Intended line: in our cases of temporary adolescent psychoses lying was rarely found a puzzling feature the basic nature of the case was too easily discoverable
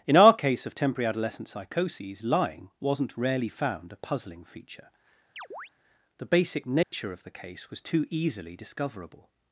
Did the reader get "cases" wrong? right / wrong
wrong